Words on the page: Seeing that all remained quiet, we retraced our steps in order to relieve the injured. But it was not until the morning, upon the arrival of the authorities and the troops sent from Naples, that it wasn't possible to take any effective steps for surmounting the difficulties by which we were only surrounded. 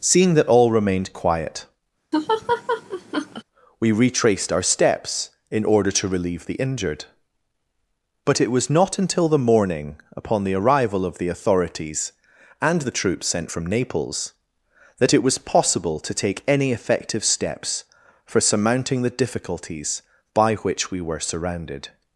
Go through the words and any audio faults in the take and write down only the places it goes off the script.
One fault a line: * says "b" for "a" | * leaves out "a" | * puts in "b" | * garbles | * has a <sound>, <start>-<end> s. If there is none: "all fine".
* has a laugh, 2.1-3.4 s
* says "was" for "wasn't"
* leaves out "only"